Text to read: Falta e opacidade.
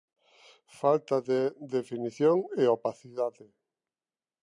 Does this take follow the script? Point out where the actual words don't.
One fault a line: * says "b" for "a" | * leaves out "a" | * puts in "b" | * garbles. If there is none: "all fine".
* puts in "de definición"